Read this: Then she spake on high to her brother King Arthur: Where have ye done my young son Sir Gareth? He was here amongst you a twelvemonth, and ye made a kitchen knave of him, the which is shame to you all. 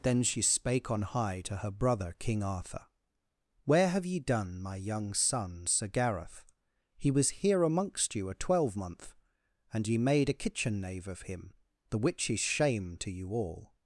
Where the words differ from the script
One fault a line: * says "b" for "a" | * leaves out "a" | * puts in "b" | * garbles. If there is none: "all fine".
all fine